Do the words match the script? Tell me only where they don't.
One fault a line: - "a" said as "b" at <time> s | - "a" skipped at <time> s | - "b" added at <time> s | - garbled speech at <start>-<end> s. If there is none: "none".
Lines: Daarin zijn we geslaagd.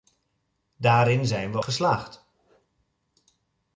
none